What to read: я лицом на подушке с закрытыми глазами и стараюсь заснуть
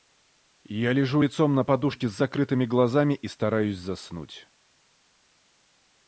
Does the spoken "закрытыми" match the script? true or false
true